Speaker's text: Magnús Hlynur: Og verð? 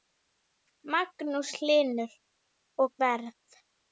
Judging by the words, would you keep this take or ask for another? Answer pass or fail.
pass